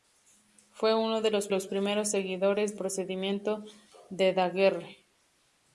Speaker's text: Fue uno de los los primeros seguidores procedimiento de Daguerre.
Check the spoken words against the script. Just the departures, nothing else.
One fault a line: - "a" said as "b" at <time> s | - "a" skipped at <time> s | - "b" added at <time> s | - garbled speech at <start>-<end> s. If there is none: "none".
none